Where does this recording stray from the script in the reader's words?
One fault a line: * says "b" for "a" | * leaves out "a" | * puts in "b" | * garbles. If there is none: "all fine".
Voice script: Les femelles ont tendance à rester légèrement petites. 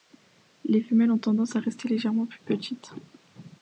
* puts in "plus"